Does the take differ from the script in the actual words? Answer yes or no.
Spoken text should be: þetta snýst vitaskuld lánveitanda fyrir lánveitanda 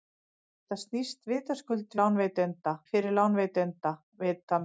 no